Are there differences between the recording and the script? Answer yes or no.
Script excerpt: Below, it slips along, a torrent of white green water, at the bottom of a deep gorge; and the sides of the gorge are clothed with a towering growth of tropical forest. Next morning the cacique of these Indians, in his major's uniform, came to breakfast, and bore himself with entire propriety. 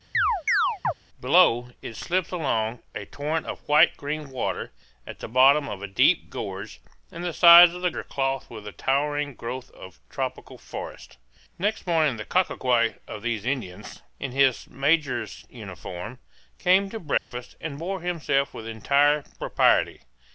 yes